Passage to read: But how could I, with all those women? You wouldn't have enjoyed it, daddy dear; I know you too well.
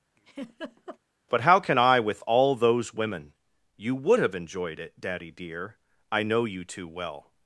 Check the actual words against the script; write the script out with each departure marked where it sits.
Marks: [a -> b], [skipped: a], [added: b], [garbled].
But how [could -> can] I, with all those women? You [wouldn't -> would] have enjoyed it, daddy dear; I know you too well.